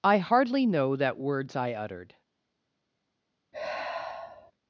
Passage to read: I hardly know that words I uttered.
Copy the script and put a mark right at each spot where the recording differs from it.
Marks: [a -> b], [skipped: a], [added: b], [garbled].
I hardly know that words I uttered.